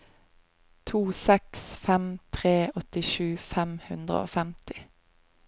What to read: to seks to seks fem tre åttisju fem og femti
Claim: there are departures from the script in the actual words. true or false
true